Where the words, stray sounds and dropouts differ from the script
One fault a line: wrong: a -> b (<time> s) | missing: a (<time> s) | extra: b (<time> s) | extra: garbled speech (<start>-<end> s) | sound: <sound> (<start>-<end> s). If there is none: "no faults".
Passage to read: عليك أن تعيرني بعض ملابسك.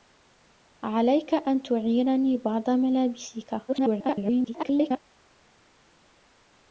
extra: garbled speech (3.7-5.0 s)